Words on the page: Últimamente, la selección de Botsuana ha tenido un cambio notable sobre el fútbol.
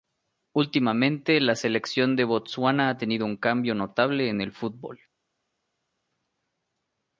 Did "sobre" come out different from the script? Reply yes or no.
yes